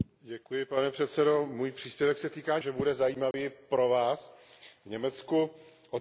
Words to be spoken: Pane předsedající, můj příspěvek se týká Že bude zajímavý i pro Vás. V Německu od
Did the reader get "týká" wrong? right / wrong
right